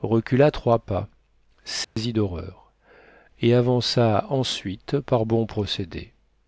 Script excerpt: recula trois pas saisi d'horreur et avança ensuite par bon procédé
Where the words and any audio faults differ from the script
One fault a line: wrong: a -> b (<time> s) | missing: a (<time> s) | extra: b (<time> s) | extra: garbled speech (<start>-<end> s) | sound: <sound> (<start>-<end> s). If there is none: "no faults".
sound: dropout (1.8-2.0 s)